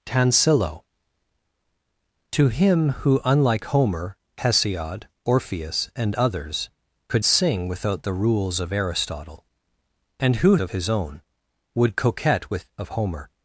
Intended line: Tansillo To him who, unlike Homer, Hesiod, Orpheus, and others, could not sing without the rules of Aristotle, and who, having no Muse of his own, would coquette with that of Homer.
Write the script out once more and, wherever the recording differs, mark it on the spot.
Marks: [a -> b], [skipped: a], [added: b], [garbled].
Tansillo To him who, unlike Homer, Hesiod, Orpheus, and others, could [skipped: not] sing without the rules of Aristotle, and who, [skipped: having no Muse] of his own, would coquette with [skipped: that] of Homer.